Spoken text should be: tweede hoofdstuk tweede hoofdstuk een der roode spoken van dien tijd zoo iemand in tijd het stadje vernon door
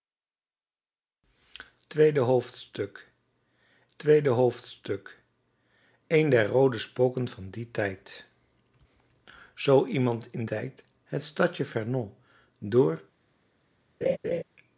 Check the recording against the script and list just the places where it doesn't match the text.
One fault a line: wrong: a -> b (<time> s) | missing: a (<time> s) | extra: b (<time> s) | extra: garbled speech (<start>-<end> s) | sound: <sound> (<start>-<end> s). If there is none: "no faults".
sound: laugh (14.0-14.4 s)